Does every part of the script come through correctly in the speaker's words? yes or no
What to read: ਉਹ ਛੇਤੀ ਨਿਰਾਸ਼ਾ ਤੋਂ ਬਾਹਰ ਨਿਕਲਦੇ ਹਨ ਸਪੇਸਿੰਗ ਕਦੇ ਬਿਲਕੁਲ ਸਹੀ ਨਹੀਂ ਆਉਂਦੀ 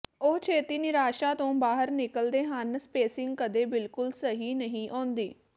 yes